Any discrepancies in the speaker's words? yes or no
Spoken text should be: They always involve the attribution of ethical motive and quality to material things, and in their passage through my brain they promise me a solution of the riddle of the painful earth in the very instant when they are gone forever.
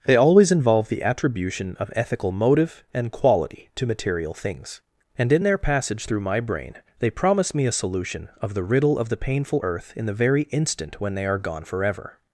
no